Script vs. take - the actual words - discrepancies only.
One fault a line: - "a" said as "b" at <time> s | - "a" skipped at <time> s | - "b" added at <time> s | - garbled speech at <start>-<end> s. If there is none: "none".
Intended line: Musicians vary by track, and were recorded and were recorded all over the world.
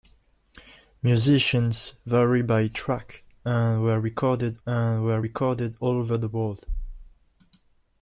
none